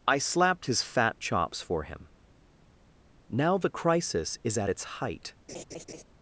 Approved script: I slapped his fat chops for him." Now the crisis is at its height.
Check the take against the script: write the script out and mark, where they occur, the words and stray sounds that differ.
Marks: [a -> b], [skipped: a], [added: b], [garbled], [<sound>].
I slapped his fat chops for him." Now the crisis is at its height. [laugh]